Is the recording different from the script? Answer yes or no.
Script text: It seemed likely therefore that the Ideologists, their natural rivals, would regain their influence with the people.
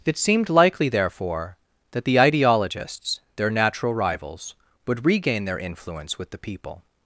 no